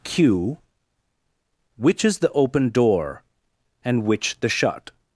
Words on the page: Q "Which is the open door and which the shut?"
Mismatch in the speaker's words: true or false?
false